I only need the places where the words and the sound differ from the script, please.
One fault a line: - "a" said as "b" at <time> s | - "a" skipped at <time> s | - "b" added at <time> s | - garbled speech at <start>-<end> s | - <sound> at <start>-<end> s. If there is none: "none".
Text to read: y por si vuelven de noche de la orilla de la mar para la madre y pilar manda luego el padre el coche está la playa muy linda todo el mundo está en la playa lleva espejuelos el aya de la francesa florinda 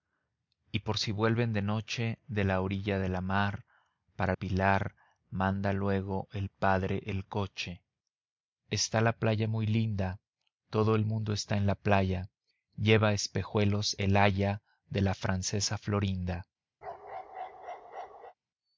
- "la madre y" skipped at 4.3 s
- bark at 16.8-18.3 s